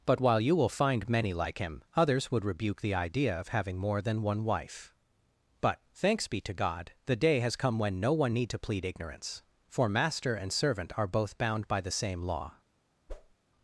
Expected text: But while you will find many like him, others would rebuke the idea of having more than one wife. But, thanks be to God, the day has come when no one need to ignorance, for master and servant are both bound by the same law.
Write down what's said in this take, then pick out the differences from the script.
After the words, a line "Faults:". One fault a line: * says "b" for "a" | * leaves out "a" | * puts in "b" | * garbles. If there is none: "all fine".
But while you will find many like him, others would rebuke the idea of having more than one wife. But, thanks be to God, the day has come when no one need to plead ignorance, for master and servant are both bound by the same law.
Faults:
* puts in "plead"